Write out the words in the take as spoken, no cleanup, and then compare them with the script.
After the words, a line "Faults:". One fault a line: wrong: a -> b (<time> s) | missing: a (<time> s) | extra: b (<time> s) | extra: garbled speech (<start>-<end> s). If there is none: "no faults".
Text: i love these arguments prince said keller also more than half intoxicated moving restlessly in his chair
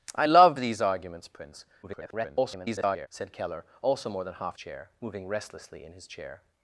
i love these arguments prince [garbled] said keller also more than half chair moving restlessly in his chair
Faults:
extra: garbled speech (1.8-3.1 s)
wrong: intoxicated -> chair (4.5 s)